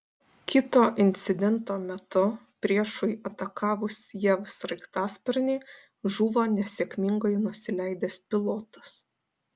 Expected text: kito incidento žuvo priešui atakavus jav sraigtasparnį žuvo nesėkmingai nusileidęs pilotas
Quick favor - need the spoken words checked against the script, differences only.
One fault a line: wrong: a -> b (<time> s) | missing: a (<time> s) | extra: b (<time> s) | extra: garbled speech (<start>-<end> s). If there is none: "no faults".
wrong: žuvo -> metu (1.8 s)